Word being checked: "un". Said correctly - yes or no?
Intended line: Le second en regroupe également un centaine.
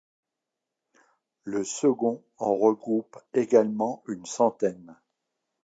no